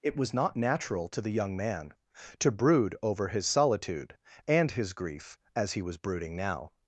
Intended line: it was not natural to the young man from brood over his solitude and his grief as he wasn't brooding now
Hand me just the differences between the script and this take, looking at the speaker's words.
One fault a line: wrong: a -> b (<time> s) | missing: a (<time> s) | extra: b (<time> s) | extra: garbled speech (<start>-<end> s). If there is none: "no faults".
wrong: from -> to (2.4 s)
wrong: wasn't -> was (5.8 s)